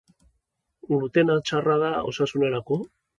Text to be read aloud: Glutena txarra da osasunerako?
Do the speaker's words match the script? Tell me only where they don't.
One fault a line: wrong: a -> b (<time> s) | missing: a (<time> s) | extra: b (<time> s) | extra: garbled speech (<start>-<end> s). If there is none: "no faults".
no faults